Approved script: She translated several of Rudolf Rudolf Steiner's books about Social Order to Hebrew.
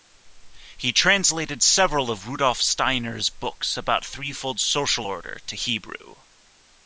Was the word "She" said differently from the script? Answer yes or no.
yes